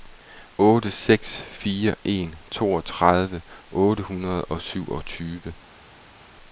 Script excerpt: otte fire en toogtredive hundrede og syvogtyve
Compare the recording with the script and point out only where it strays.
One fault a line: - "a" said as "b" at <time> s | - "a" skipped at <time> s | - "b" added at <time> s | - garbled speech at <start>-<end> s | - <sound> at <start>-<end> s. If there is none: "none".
- "seks" added at 0.9 s
- "otte" added at 3.7 s